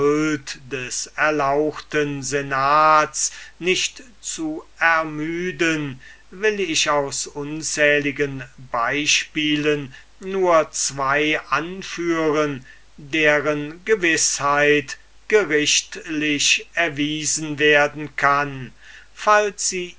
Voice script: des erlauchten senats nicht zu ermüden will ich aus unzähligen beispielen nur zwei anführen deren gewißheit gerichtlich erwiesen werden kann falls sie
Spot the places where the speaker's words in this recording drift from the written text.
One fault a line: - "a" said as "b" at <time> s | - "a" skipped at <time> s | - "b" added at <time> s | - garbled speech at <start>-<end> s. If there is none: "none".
none